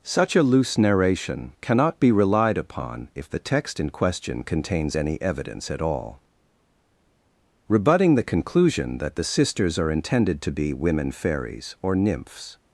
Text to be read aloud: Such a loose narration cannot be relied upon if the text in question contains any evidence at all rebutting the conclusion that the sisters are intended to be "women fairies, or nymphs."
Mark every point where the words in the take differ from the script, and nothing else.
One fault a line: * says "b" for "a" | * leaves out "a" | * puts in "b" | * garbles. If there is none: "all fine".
all fine